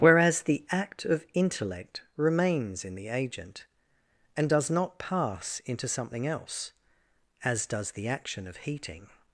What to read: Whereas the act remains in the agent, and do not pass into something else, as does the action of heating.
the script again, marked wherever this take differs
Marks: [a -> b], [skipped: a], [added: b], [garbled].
Whereas the act [added: of intellect] remains in the agent, and [do -> does] not pass into something else, as does the action of heating.